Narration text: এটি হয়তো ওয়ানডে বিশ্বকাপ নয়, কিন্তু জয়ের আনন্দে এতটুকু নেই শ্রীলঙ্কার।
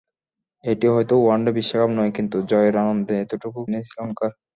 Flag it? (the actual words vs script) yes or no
no